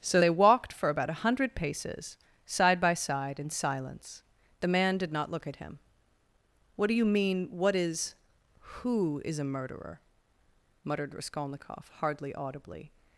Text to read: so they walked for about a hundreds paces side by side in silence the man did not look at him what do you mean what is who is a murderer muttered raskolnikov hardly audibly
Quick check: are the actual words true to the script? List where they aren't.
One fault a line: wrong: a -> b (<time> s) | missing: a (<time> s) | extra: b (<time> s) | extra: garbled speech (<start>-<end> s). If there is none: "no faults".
wrong: hundreds -> hundred (1.2 s)